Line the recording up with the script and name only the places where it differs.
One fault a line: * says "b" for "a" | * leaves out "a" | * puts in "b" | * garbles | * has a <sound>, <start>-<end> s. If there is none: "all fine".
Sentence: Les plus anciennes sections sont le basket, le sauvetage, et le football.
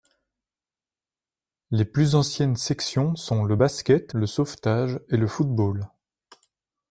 all fine